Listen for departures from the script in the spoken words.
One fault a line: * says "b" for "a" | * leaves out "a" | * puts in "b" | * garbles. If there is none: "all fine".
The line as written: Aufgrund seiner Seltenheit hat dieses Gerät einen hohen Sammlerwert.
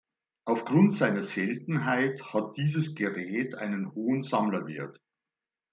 all fine